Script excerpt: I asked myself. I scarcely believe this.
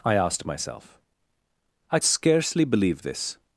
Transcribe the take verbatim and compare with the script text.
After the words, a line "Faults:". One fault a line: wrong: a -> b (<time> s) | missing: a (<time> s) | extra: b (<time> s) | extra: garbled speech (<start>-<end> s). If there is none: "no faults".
I asked myself. I scarcely believe this.
Faults:
no faults